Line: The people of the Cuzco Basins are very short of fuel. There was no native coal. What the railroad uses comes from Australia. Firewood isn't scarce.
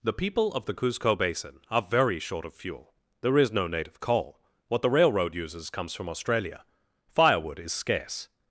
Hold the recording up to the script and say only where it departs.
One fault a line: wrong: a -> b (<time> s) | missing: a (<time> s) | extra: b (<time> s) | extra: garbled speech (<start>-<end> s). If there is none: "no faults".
wrong: Basins -> Basin (1.1 s)
wrong: was -> is (3.4 s)
wrong: isn't -> is (7.6 s)